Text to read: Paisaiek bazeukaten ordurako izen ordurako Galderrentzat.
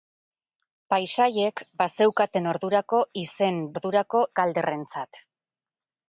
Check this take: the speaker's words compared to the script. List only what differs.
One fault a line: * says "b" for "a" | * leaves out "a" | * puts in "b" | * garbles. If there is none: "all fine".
all fine